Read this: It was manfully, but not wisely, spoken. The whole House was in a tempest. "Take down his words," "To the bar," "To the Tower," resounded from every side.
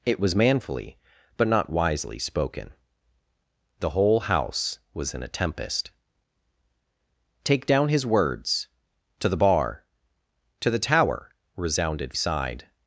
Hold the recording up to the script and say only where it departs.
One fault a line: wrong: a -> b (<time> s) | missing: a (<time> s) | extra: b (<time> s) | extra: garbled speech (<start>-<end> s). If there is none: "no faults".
missing: from every (12.1 s)